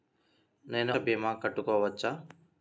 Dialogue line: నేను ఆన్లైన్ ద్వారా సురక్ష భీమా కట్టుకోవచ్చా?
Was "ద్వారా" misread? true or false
true